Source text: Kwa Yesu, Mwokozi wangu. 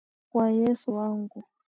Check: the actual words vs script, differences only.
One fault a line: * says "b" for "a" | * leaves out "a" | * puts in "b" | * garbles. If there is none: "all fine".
* leaves out "Mwokozi"